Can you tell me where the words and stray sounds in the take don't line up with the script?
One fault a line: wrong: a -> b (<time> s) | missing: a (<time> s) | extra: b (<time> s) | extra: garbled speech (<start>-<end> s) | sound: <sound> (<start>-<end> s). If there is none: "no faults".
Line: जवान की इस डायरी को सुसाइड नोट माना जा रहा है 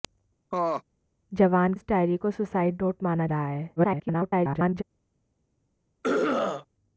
sound: laugh (0.5-0.8 s)
missing: की (1.7 s)
missing: जा (3.3 s)
extra: garbled speech (3.8-4.8 s)
sound: throat clearing (6.0-6.7 s)